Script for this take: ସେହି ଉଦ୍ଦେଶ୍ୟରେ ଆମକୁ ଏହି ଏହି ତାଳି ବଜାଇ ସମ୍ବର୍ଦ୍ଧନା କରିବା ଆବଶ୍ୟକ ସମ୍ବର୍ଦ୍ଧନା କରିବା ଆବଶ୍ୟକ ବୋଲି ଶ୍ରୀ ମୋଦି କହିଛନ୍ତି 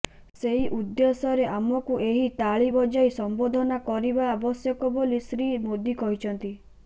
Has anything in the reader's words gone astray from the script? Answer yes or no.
yes